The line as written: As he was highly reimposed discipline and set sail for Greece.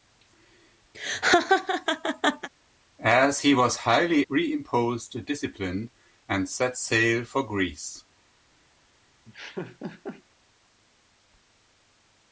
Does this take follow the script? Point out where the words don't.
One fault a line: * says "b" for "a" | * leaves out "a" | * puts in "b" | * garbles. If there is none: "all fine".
all fine